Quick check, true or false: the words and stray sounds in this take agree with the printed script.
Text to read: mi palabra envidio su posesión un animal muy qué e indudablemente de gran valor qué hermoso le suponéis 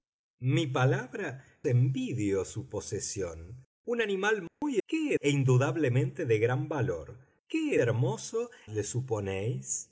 false